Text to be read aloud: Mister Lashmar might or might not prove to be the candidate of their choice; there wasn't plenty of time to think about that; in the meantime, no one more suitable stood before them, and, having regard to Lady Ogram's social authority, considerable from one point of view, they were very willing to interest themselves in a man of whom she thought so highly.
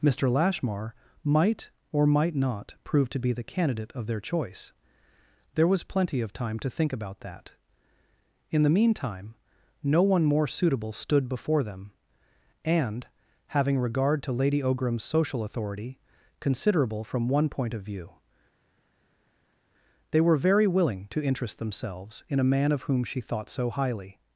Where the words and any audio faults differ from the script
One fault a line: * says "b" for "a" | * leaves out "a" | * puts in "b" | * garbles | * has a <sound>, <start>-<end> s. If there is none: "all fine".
* says "was" for "wasn't"